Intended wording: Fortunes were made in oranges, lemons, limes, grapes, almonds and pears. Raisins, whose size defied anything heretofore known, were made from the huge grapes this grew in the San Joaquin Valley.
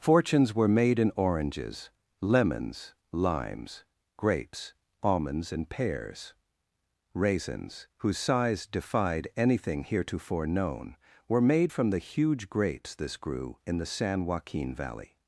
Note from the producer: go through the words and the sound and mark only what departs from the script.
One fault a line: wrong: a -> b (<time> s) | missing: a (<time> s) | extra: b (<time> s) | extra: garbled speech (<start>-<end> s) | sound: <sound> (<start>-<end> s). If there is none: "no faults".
no faults